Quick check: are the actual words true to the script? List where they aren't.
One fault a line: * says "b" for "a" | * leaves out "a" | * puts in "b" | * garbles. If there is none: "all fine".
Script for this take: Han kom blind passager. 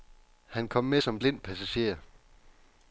* puts in "med som"